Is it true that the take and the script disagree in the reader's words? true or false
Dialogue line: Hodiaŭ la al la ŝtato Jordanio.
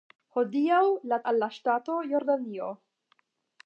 false